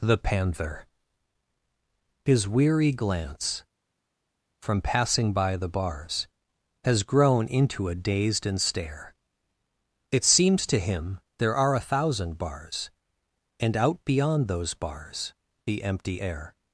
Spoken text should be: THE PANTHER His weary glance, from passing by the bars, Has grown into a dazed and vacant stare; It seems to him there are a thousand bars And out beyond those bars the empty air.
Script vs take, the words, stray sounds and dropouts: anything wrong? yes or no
yes